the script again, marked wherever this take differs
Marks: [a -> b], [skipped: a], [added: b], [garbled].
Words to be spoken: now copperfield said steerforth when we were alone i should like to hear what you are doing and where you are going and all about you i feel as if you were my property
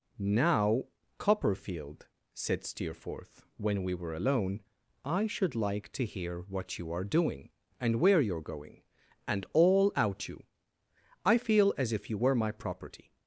now copperfield said steerforth when we were alone i should like to hear what you are doing and where you are going and all [about -> out] you i feel as if you were my property